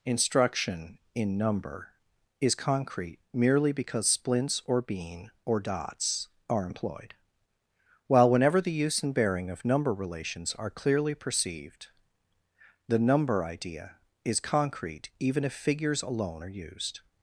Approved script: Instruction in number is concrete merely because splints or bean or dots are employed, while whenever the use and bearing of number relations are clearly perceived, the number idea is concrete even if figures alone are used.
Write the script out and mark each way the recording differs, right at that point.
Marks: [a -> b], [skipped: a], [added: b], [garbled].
Instruction in number is concrete merely because splints or bean or dots are employed, while whenever the use and bearing of number relations are clearly perceived, the number idea is concrete even if figures alone are used.